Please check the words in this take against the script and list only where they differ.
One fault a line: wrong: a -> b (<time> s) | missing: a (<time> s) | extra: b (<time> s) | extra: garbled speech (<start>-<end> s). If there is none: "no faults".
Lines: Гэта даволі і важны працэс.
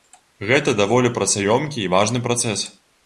extra: працаёмкі (1.2 s)